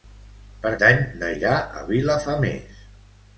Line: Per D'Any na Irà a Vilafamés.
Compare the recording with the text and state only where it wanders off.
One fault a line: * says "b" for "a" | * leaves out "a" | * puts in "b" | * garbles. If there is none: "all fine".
all fine